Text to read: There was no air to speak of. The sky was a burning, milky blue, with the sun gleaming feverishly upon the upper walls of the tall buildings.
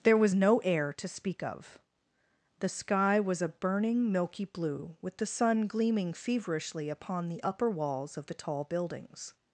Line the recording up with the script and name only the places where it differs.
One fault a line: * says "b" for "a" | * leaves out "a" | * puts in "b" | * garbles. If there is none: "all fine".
all fine